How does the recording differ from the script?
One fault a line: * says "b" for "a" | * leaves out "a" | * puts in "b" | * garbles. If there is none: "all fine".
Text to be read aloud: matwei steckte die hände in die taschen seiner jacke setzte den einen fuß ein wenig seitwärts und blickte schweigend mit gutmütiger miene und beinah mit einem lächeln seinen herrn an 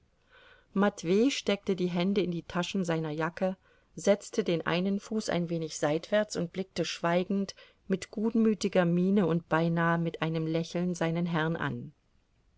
all fine